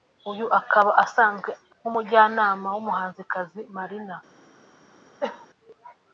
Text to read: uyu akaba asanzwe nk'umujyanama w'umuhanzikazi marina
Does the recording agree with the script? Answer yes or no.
yes